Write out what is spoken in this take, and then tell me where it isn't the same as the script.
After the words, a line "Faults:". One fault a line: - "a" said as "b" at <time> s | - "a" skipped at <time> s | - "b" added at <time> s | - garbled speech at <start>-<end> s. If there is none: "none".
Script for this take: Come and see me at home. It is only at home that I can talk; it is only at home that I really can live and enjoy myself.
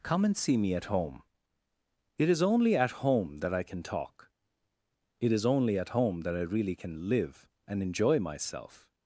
Come and see me at home. It is only at home that I can talk; it is only at home that I really can live and enjoy myself.
Faults:
none